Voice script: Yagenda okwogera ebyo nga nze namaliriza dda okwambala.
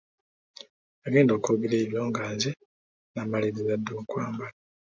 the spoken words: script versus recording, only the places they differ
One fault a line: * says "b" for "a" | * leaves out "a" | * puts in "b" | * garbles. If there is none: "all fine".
all fine